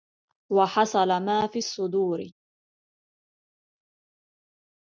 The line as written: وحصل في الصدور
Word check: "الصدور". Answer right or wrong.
right